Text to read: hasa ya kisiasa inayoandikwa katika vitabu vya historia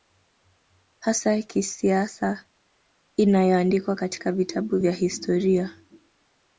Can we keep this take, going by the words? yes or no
yes